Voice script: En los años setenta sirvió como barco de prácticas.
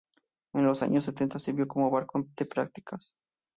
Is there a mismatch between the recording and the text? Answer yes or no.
no